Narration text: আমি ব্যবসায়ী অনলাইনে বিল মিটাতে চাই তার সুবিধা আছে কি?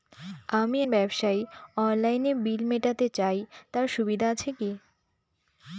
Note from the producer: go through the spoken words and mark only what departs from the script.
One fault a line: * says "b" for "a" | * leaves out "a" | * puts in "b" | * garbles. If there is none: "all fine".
all fine